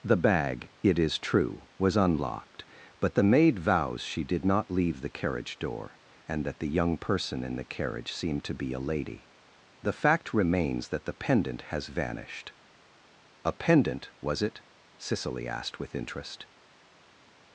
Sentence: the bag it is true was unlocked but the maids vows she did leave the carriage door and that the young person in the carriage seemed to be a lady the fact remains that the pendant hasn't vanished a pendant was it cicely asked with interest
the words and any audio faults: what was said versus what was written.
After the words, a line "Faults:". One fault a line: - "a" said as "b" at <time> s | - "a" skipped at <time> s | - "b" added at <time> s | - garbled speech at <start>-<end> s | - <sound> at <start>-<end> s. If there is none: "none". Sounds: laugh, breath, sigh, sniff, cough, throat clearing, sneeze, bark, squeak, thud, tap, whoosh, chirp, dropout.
the bag it is true was unlocked but the maid vows she did not leave the carriage door and that the young person in the carriage seemed to be a lady the fact remains that the pendant has vanished a pendant was it cicely asked with interest
Faults:
- "maids" said as "maid" at 3.2 s
- "not" added at 4.4 s
- "hasn't" said as "has" at 11.7 s